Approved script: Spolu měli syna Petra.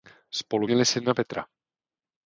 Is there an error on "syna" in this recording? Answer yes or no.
no